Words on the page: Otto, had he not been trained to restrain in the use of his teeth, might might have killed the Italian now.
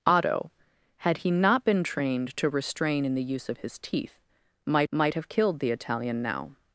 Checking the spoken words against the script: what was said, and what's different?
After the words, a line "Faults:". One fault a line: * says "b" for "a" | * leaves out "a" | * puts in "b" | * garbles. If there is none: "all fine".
Otto, had he not been trained to restrain in the use of his teeth, might might have killed the Italian now.
Faults:
all fine